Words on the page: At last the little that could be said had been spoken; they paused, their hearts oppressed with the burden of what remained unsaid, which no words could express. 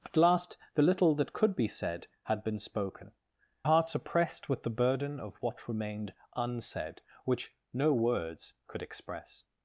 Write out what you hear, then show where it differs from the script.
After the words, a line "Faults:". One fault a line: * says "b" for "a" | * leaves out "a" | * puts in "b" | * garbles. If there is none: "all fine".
At last the little that could be said had been spoken; hearts oppressed with the burden of what remained unsaid, which no words could express.
Faults:
* leaves out "they paused their"